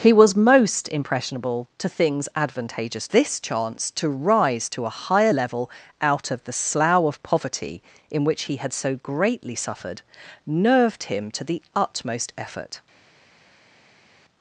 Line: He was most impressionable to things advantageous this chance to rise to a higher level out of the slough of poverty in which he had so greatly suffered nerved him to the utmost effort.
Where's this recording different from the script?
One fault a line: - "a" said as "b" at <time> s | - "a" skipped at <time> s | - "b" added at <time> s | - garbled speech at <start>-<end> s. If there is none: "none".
none